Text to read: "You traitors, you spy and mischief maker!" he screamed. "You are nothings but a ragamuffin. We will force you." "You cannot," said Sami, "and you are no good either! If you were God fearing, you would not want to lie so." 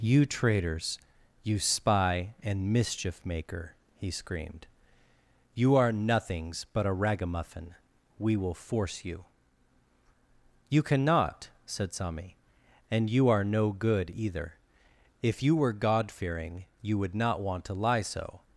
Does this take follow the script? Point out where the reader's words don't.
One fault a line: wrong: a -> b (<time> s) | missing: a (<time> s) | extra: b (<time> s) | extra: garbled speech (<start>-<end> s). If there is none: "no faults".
no faults